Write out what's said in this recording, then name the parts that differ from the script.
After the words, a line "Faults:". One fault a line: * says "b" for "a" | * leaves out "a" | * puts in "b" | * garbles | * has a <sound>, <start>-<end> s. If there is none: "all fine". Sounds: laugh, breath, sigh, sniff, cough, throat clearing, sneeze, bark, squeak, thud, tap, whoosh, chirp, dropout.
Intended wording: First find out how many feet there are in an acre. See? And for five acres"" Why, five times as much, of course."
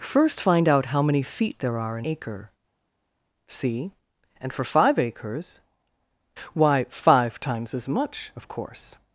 First find out how many feet there are in acre. See? And for five acres"" Why, five times as much, of course."
Faults:
* leaves out "an"